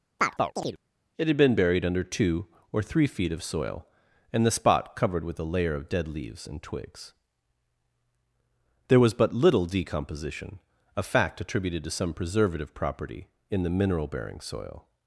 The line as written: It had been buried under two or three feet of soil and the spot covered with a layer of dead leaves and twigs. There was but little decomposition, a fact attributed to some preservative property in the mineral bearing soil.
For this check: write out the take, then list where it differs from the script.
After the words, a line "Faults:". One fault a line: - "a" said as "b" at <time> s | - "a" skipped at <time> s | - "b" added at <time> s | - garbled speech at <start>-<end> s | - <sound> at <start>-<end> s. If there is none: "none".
It had been buried under two or three feet of soil and the spot covered with a layer of dead leaves and twigs. There was but little decomposition, a fact attributed to some preservative property in the mineral bearing soil.
Faults:
- chirp at 0.2-0.8 s